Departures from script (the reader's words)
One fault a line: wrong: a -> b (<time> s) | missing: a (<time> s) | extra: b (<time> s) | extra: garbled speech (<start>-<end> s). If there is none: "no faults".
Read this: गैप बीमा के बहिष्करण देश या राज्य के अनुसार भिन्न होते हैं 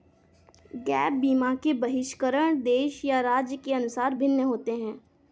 no faults